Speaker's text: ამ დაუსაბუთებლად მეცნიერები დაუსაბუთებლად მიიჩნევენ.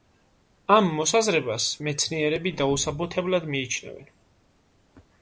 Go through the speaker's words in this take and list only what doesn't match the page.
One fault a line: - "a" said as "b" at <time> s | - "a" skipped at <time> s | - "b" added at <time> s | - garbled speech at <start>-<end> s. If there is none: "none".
- "დაუსაბუთებლად" said as "მოსაზრებას" at 1.0 s